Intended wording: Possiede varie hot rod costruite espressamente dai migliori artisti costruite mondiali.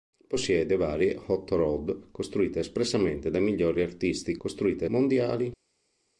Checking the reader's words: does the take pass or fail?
pass